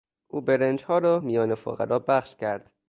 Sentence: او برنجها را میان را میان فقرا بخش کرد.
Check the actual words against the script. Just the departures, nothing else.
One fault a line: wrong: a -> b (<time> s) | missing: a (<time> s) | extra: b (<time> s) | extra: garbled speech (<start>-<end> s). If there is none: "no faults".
missing: را میان (1.5 s)